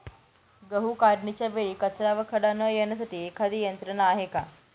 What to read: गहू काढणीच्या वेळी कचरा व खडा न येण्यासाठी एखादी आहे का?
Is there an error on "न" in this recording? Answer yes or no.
no